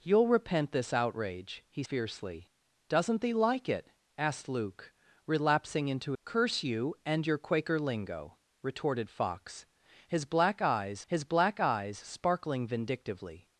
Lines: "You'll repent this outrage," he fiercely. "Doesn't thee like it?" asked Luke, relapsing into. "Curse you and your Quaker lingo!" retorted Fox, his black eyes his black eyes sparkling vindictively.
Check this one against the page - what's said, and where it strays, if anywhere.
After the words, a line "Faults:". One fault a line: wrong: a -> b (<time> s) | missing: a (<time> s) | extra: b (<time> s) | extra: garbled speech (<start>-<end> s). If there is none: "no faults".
"You'll repent this outrage," he fiercely. "Doesn't thee like it?" asked Luke, relapsing into. "Curse you and your Quaker lingo!" retorted Fox, his black eyes his black eyes sparkling vindictively.
Faults:
no faults